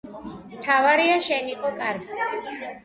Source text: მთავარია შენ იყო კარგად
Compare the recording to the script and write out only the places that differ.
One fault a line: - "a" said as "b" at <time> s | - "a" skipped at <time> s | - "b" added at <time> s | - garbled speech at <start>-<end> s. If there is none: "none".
none